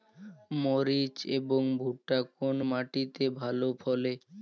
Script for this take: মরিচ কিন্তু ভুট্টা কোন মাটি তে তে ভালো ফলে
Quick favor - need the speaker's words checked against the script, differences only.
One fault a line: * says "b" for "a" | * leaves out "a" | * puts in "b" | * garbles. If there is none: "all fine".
* says "এবং" for "কিন্তু"
* leaves out "তে"